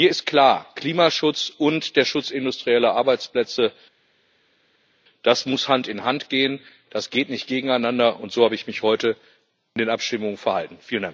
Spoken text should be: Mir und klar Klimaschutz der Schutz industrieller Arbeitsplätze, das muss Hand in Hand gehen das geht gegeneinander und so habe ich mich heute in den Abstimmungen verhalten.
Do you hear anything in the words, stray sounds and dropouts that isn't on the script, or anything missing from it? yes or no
yes